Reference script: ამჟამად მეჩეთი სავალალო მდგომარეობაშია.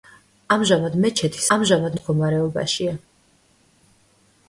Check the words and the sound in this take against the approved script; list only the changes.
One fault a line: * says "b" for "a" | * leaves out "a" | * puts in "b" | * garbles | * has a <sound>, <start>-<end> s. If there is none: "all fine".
* says "ამჟამად" for "სავალალო"